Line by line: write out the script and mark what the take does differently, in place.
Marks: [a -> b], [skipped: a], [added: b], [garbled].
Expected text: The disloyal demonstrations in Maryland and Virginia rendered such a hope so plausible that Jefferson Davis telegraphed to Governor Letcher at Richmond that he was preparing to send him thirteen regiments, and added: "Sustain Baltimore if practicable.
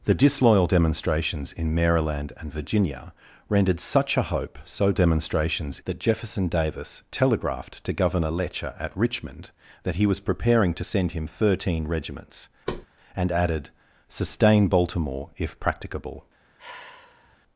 The disloyal demonstrations in Maryland and Virginia rendered such a hope so [plausible -> demonstrations] that Jefferson Davis telegraphed to Governor Letcher at Richmond that he was preparing to send him thirteen regiments, and added: "Sustain Baltimore if practicable.